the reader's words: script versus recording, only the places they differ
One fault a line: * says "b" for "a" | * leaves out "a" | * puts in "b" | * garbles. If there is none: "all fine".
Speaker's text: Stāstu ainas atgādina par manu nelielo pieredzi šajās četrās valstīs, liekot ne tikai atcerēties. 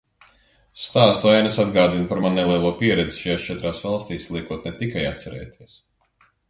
all fine